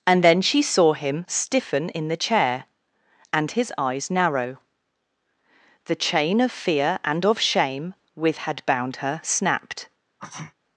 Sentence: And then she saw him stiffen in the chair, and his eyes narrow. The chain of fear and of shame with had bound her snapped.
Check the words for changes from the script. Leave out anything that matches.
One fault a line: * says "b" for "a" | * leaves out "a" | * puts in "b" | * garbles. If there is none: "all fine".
all fine